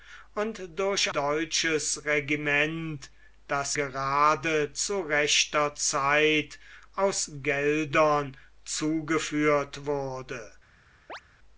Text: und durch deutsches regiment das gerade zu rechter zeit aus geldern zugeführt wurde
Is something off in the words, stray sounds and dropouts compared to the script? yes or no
yes